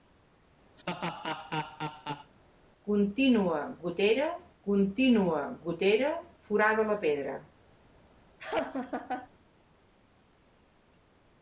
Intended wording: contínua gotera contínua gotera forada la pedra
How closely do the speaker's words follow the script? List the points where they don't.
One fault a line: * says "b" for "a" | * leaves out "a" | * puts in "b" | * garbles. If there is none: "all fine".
all fine